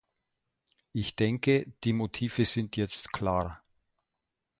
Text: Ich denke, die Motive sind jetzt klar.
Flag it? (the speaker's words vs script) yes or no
no